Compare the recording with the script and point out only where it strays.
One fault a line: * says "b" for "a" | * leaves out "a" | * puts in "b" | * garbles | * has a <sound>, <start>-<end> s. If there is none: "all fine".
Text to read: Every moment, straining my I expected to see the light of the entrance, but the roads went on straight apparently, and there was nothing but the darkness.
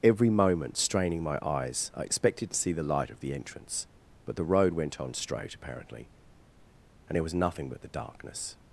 * puts in "eyes"
* says "road" for "roads"